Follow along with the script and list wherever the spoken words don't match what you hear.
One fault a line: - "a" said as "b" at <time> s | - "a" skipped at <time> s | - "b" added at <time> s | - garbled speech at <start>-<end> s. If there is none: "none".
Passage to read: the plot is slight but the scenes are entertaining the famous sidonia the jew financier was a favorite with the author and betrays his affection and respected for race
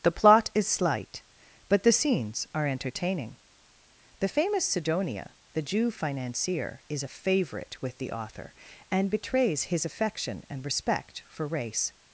- "was" said as "is" at 6.9 s
- "respected" said as "respect" at 10.6 s